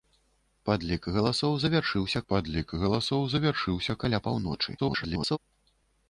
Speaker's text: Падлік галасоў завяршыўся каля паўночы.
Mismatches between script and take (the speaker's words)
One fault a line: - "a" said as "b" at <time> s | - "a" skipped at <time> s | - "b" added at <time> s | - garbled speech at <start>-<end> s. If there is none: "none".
- "падлік галасоў завяршыўся" added at 2.3 s
- garbled speech at 4.8-5.4 s